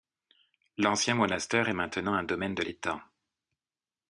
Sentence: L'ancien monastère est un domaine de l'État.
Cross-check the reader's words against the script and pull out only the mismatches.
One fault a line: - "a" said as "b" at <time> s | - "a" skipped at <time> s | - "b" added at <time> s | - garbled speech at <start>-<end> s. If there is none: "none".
- "maintenant" added at 1.7 s